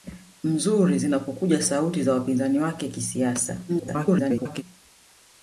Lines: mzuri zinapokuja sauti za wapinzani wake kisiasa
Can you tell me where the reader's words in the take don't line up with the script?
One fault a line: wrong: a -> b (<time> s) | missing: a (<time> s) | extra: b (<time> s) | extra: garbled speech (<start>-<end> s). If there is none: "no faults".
extra: garbled speech (3.7-4.6 s)